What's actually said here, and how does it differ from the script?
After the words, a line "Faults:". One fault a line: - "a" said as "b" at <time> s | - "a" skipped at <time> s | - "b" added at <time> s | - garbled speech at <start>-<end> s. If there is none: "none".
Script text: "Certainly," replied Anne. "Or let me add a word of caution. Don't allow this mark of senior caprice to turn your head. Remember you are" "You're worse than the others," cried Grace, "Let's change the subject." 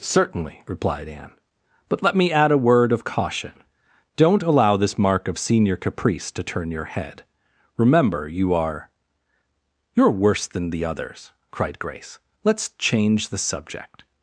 "Certainly," replied Anne. "But let me add a word of caution. Don't allow this mark of senior caprice to turn your head. Remember you are" "You're worse than the others," cried Grace, "Let's change the subject."
Faults:
- "Or" said as "But" at 1.9 s